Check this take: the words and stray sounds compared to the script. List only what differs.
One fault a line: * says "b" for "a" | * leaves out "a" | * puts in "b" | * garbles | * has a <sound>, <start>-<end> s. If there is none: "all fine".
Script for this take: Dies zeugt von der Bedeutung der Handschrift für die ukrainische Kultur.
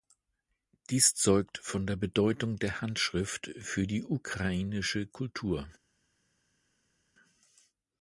all fine